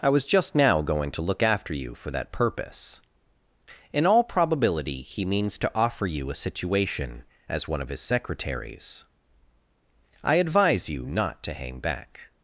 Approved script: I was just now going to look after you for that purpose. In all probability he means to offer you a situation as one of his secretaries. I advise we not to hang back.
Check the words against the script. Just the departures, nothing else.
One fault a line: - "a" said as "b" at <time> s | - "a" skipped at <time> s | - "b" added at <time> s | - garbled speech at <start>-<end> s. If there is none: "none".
- "we" said as "you" at 10.9 s